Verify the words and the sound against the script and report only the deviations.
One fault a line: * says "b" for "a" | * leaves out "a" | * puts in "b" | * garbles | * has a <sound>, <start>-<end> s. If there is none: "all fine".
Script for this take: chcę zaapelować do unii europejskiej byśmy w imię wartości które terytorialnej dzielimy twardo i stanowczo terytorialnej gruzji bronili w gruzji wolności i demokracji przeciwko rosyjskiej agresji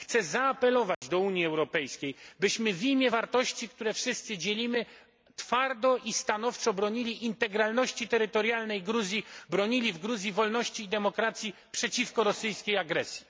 * has a dropout, 0.9-1.0 s
* says "wszyscy" for "terytorialnej"
* puts in "bronili integralności"